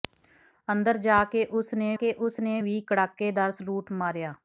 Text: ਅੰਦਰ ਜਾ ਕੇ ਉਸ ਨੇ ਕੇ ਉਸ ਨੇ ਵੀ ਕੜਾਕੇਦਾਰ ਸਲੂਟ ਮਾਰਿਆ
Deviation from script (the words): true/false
false